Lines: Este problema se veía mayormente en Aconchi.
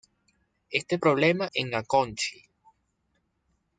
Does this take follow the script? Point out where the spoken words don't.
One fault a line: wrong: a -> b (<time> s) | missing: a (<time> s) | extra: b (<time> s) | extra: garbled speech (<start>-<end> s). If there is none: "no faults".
missing: se veía mayormente (1.5 s)